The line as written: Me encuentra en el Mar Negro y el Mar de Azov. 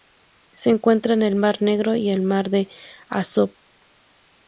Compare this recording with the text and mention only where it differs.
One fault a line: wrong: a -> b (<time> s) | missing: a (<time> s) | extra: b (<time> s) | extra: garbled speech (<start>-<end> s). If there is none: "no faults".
wrong: Me -> Se (0.5 s)